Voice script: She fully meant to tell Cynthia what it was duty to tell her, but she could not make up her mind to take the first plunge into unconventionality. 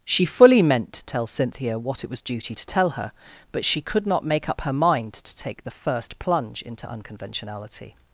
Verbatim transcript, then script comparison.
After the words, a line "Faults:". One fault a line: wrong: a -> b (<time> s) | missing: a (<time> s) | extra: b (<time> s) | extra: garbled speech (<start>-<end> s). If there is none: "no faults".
She fully meant to tell Cynthia what it was duty to tell her, but she could not make up her mind to take the first plunge into unconventionality.
Faults:
no faults